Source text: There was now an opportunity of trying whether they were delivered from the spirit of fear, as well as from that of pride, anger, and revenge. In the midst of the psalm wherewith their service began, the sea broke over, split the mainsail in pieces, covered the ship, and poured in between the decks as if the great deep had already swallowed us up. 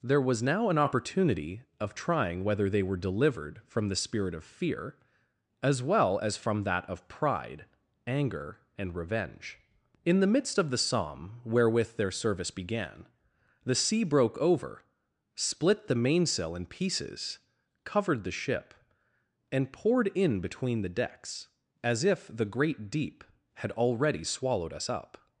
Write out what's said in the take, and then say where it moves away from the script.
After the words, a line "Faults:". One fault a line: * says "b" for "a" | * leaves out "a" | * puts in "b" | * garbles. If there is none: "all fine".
There was now an opportunity of trying whether they were delivered from the spirit of fear, as well as from that of pride, anger, and revenge. In the midst of the psalm wherewith their service began, the sea broke over, split the mainsail in pieces, covered the ship, and poured in between the decks as if the great deep had already swallowed us up.
Faults:
all fine